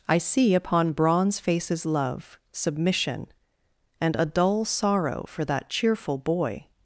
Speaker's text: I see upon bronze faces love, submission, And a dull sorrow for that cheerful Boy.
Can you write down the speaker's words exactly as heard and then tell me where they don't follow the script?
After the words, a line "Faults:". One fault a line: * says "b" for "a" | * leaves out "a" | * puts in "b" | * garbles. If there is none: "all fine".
I see upon bronze faces love, submission, And a dull sorrow for that cheerful Boy.
Faults:
all fine